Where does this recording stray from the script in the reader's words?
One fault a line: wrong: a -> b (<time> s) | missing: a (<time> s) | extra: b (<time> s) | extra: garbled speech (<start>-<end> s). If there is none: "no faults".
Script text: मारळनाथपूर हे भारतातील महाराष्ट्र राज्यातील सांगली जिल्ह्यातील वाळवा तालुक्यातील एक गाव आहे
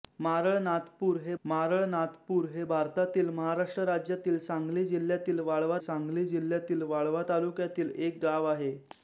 extra: मारळनाथपूर हे (1.4 s)
extra: सांगली जिल्ह्यातील वाळवा (5.8 s)